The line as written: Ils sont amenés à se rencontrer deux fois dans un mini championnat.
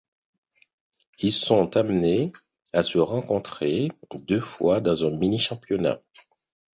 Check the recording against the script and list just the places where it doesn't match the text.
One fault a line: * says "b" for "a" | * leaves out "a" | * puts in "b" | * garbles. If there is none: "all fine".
all fine